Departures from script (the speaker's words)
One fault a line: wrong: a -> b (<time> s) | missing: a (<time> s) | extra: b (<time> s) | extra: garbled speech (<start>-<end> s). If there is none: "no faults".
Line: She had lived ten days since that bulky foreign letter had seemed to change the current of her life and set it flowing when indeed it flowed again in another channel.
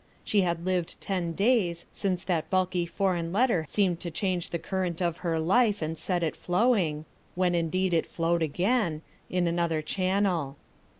missing: had (3.6 s)